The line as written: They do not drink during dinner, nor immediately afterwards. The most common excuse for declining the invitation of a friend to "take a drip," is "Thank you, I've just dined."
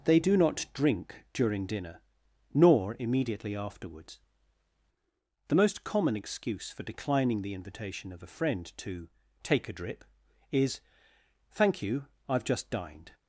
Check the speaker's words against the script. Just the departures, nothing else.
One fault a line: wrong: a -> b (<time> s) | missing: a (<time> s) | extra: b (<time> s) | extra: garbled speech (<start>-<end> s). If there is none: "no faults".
no faults